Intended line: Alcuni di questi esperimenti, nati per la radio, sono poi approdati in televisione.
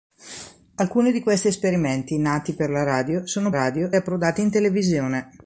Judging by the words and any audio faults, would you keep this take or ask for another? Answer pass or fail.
fail